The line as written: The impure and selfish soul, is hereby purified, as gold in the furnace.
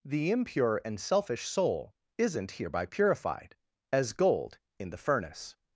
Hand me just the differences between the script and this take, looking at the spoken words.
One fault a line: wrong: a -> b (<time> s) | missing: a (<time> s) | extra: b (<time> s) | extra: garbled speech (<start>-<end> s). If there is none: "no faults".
wrong: is -> isn't (2.2 s)